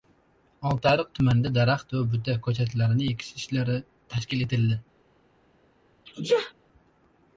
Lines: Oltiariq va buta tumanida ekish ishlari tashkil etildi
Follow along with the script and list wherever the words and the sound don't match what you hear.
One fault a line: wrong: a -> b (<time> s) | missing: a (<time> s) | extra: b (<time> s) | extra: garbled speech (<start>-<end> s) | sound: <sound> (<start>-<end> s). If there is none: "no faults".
extra: tumanida daraxt (1.2 s)
wrong: tumanida -> ko‘chatlarini (2.5 s)
sound: sneeze (6.1-6.5 s)